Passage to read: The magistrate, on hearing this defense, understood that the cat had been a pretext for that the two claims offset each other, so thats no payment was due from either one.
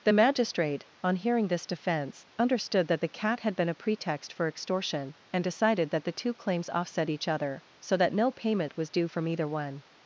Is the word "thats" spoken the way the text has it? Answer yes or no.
no